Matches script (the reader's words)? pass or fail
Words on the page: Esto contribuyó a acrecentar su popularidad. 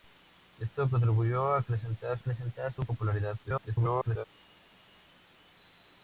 fail